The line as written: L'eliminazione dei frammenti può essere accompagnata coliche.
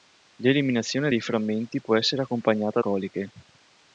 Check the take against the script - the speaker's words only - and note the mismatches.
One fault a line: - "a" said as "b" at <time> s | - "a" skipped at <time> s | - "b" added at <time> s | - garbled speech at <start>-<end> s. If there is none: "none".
none